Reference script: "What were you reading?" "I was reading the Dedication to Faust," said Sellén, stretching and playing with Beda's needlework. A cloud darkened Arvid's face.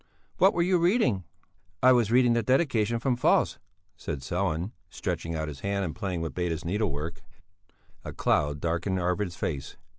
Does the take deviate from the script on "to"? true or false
true